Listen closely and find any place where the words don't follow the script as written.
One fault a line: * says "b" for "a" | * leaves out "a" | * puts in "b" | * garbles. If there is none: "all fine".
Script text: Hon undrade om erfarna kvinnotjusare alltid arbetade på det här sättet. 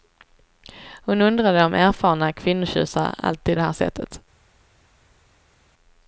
* leaves out "arbetade på"